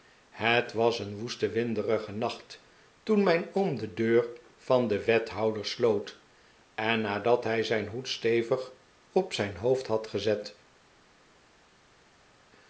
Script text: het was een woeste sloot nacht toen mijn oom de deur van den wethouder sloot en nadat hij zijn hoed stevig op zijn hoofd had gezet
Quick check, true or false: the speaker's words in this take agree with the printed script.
false